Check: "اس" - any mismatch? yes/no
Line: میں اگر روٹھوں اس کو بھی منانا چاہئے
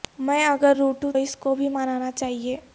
no